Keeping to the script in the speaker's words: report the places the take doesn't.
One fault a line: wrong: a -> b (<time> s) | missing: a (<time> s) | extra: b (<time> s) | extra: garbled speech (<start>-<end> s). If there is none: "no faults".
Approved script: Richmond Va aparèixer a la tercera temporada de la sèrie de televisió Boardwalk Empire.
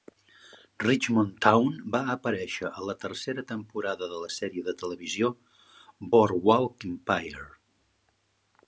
extra: Town (1.5 s)